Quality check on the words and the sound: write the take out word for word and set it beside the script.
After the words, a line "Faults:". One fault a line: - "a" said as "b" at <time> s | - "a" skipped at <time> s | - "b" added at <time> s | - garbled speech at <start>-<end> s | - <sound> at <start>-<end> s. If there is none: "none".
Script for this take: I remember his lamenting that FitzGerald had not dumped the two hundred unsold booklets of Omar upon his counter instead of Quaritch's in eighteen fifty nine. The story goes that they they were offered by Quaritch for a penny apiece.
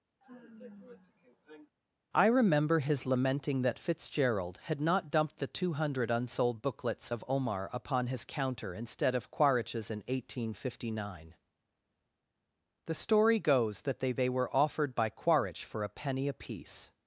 I remember his lamenting that FitzGerald had not dumped the two hundred unsold booklets of Omar upon his counter instead of Quaritch's in eighteen fifty nine. The story goes that they they were offered by Quaritch for a penny apiece.
Faults:
- sigh at 0.2-1.7 s